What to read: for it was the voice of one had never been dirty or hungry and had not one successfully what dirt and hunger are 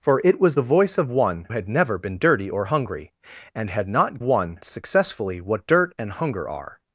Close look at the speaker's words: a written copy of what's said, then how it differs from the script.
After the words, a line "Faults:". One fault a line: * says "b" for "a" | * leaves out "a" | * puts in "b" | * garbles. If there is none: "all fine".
for it was the voice of one had never been dirty or hungry and had not one successfully what dirt and hunger are
Faults:
all fine